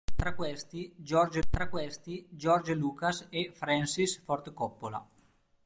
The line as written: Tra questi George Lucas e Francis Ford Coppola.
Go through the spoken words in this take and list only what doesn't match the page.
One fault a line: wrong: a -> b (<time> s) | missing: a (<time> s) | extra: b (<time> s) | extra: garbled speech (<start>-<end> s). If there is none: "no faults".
extra: tra questi George (1.5 s)